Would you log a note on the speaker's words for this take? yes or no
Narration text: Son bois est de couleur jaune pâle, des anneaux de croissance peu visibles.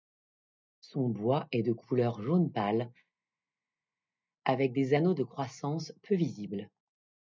yes